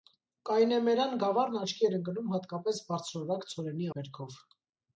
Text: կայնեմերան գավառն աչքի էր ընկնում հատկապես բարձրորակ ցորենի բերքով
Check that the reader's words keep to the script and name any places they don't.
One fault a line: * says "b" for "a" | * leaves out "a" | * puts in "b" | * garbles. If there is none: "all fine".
all fine